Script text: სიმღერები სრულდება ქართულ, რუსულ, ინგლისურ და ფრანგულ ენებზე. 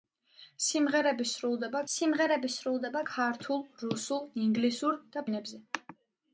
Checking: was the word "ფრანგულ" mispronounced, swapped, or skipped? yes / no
yes